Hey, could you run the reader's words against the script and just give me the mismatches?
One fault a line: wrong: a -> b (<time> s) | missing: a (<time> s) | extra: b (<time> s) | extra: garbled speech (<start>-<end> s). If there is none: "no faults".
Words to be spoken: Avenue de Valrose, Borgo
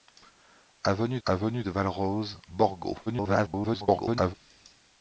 extra: avenue (1.2 s)
extra: garbled speech (3.1-4.3 s)